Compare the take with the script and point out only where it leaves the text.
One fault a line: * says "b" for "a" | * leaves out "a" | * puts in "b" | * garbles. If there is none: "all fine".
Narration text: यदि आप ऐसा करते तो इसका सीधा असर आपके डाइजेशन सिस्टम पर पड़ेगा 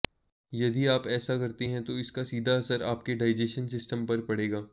* puts in "हैं"